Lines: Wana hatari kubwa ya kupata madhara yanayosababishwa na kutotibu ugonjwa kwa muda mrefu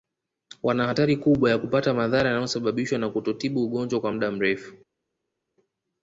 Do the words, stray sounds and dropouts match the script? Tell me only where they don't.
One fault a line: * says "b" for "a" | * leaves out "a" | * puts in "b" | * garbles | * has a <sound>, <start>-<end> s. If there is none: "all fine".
all fine